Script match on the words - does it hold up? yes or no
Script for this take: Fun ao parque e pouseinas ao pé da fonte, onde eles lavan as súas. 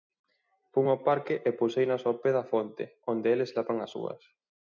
yes